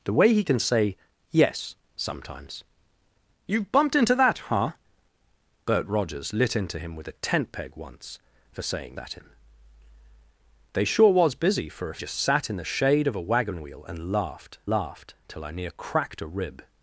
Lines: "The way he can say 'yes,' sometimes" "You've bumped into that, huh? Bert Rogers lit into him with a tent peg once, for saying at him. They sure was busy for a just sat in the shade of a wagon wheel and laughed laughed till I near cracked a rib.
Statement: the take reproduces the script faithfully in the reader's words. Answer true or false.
true